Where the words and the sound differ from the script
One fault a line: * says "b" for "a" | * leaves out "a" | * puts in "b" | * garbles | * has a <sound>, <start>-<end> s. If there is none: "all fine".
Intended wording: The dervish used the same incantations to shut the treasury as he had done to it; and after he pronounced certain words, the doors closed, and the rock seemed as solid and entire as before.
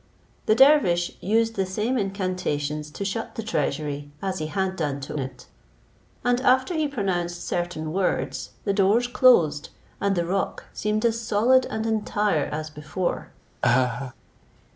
* has a laugh, 13.6-14.1 s